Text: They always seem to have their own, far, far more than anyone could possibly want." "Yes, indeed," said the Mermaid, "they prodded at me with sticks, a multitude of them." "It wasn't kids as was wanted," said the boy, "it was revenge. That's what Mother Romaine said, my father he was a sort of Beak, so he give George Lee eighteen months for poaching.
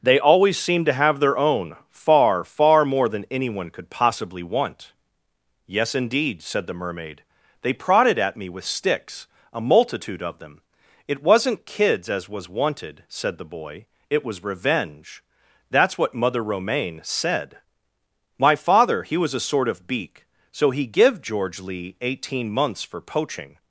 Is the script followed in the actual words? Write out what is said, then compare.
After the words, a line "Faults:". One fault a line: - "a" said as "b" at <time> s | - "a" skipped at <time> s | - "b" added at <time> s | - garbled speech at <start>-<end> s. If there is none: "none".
They always seem to have their own, far, far more than anyone could possibly want." "Yes, indeed," said the Mermaid, "they prodded at me with sticks, a multitude of them." "It wasn't kids as was wanted," said the boy, "it was revenge. That's what Mother Romaine said, my father he was a sort of Beak, so he give George Lee eighteen months for poaching.
Faults:
none